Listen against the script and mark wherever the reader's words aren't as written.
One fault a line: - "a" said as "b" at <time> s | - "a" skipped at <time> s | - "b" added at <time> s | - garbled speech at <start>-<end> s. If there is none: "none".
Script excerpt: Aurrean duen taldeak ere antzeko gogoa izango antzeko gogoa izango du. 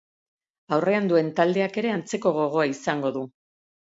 - "antzeko gogoa izango" skipped at 3.1 s